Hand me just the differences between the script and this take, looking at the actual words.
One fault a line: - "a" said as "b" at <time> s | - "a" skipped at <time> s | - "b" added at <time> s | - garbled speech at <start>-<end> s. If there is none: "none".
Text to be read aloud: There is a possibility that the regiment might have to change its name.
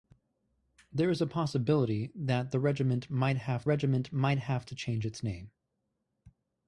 - "regiment might have" added at 3.6 s